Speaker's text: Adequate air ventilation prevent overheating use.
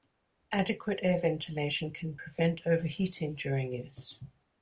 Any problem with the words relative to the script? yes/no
yes